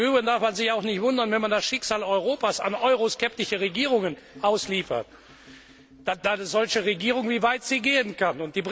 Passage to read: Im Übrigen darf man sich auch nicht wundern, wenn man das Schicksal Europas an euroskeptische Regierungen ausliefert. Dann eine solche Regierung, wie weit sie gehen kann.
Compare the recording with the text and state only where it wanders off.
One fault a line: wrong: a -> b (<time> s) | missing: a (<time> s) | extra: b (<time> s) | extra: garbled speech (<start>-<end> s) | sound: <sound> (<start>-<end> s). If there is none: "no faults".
no faults